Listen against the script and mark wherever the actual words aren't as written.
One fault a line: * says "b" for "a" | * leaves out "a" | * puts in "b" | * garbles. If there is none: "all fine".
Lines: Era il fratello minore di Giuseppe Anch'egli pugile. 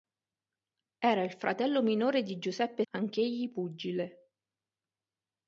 all fine